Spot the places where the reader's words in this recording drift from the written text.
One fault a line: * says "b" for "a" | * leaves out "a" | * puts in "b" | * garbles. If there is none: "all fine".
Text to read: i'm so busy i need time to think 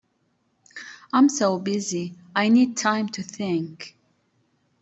all fine